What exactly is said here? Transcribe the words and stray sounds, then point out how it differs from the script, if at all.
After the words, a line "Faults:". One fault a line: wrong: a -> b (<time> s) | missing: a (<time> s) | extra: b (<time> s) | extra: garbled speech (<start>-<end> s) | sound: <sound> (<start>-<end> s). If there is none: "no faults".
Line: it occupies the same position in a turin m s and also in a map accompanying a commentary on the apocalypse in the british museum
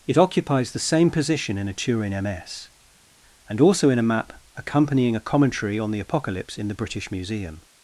it occupies the same position in a turin m s and also in a map accompanying a commentary on the apocalypse in the british museum
Faults:
no faults